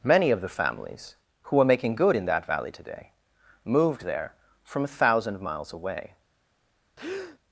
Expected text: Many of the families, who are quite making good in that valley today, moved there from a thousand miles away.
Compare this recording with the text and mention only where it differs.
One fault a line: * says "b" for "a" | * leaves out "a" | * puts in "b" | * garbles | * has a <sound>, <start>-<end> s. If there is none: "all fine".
* leaves out "quite"
* has a breath, 7.0-7.4 s